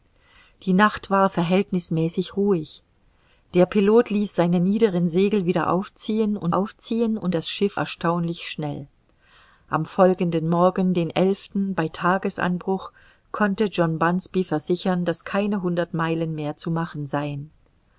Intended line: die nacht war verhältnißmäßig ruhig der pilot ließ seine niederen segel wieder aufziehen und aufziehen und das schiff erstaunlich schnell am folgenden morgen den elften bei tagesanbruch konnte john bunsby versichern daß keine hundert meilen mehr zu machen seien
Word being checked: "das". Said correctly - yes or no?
yes